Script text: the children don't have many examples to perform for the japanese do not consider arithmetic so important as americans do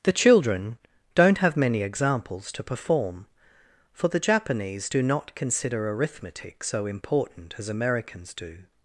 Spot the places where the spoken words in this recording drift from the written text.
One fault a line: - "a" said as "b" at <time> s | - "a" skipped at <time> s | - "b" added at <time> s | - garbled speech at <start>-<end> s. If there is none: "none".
none